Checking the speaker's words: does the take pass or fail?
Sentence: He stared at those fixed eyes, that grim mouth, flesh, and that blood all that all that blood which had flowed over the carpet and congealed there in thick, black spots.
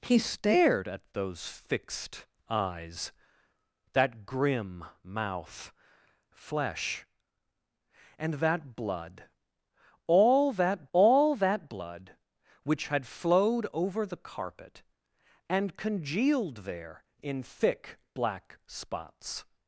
pass